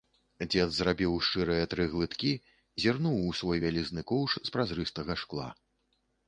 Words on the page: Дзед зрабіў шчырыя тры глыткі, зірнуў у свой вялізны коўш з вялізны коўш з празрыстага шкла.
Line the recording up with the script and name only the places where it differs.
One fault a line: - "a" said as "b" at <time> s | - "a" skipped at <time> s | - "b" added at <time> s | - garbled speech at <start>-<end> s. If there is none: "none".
- "вялізны коўш з" skipped at 4.6 s